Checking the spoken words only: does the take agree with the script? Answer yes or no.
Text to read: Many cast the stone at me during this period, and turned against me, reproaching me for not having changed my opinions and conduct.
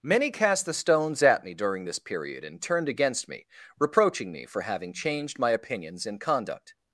no